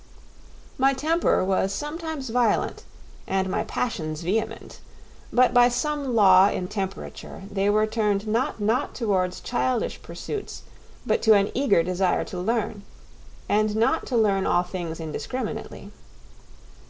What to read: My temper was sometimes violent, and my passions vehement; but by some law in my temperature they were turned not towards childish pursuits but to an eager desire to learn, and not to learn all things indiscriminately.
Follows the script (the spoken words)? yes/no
no